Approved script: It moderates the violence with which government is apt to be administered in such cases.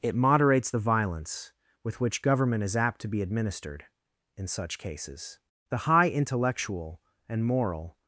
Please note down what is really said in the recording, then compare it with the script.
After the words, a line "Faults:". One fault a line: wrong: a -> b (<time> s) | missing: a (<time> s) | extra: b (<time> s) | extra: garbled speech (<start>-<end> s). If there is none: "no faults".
It moderates the violence with which government is apt to be administered in such cases. The high intellectual and moral
Faults:
extra: The high intellectual and moral (5.7 s)